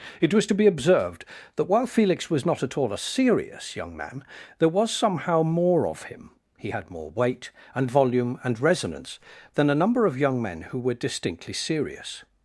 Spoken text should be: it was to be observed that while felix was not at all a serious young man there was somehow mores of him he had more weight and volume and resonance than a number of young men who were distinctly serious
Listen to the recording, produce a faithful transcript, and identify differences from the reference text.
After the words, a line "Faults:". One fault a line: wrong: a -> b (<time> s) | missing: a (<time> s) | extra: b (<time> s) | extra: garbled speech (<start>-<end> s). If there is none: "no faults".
it was to be observed that while felix was not at all a serious young man there was somehow more of him he had more weight and volume and resonance than a number of young men who were distinctly serious
Faults:
wrong: mores -> more (5.4 s)